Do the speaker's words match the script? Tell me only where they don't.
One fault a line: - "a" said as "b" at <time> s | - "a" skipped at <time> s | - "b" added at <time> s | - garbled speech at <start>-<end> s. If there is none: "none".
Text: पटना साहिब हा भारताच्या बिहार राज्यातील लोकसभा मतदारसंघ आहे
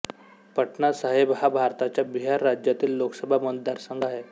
none